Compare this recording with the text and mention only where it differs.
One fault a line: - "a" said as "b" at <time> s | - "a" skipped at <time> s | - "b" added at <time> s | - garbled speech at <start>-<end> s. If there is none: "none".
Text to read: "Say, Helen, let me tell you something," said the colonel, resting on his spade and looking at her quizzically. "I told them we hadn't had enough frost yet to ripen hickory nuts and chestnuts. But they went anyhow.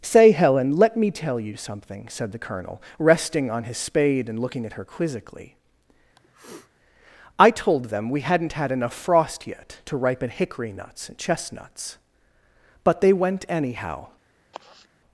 none